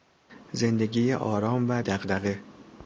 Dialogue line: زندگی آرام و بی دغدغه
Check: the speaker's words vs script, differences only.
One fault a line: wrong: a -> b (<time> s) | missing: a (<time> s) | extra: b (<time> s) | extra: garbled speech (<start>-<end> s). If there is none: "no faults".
missing: بی (1.8 s)